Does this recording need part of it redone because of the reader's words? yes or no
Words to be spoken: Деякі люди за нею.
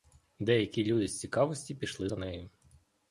yes